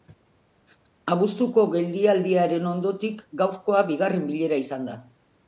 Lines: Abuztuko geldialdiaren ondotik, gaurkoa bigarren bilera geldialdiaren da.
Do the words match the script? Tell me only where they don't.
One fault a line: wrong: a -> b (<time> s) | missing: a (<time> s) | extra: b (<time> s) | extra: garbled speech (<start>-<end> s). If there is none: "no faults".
wrong: geldialdiaren -> izan (4.6 s)